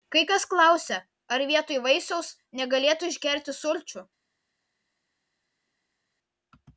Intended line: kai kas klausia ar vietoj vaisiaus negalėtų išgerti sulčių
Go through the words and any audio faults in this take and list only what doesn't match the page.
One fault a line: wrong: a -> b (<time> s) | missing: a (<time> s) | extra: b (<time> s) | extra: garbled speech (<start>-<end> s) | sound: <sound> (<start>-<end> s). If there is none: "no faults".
no faults